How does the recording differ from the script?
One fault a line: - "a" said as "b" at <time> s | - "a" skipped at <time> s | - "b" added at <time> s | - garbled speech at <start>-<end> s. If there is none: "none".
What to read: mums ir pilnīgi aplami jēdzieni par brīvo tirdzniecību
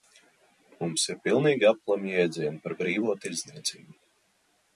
none